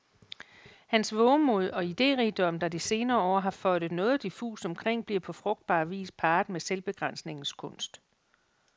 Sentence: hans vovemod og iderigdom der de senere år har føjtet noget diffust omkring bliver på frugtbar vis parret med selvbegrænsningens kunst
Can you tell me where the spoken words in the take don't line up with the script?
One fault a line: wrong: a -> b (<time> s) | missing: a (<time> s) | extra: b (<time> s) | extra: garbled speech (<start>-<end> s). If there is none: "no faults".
no faults